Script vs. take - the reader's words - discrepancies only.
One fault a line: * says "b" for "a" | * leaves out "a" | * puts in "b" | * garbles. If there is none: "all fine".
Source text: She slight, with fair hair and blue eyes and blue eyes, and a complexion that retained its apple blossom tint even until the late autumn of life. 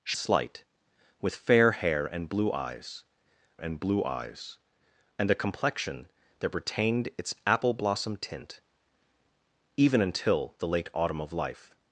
all fine